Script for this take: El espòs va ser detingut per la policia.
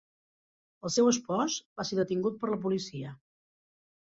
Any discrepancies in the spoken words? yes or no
yes